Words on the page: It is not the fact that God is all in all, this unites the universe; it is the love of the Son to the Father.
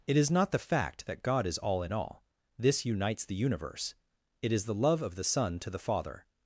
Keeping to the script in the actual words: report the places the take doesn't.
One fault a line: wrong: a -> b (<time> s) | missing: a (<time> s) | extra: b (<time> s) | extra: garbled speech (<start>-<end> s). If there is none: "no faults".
no faults